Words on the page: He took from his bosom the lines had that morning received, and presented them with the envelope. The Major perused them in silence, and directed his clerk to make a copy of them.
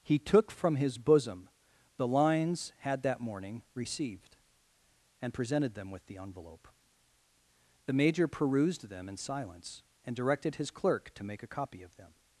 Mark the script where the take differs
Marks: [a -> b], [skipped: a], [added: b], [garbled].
He took from his bosom the lines had that morning received, and presented them with the envelope. The Major perused them in silence, and directed his clerk to make a copy of them.